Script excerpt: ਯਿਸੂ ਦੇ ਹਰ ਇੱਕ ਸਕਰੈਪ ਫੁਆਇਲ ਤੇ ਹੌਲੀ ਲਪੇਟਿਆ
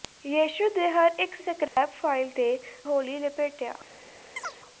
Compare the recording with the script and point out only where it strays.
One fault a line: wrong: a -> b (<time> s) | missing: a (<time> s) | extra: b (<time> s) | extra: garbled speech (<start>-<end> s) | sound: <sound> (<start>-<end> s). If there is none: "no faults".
sound: dropout (1.7-1.8 s)
sound: chirp (4.4-4.6 s)